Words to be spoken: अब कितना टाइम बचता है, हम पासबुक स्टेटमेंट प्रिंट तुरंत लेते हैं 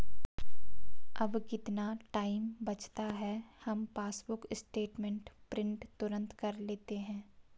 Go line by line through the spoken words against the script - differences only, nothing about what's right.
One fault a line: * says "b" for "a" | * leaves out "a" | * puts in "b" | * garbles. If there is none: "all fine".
* puts in "कर"